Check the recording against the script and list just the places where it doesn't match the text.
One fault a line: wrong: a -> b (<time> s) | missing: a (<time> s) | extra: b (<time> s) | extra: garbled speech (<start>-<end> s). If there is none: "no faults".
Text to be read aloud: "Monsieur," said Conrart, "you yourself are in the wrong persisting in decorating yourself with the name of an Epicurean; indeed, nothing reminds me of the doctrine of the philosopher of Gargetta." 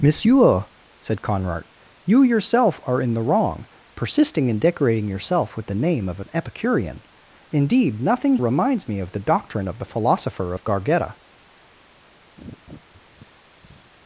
no faults